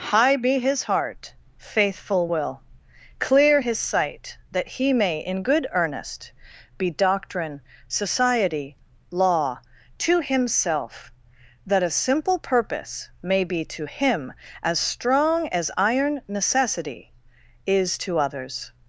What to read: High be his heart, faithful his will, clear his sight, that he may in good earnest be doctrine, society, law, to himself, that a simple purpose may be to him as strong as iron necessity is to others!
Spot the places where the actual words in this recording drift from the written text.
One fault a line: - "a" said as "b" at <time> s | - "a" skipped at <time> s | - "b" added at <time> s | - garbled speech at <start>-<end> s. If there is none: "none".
- "his" skipped at 2.3 s